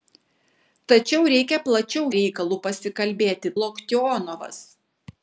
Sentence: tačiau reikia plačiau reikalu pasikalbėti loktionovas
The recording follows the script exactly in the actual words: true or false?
true